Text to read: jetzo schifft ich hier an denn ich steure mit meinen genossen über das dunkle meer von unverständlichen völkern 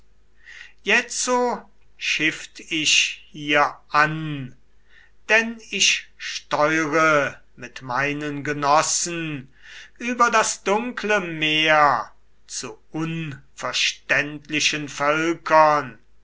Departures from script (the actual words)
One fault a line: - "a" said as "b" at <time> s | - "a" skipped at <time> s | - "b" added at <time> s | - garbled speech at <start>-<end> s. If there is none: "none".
- "von" said as "zu" at 12.5 s